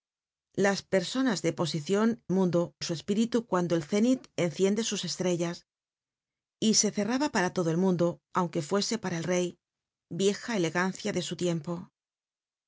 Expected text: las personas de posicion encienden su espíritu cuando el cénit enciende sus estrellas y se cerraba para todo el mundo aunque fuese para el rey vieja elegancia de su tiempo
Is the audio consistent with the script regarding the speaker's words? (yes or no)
no